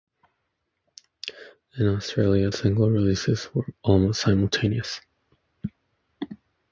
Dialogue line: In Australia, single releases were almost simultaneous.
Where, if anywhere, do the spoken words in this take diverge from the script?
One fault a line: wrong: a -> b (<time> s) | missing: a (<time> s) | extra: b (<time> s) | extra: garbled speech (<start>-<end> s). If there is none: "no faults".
no faults